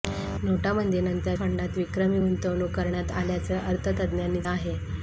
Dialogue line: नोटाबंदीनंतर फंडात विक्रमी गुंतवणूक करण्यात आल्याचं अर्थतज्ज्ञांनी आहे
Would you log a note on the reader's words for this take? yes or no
no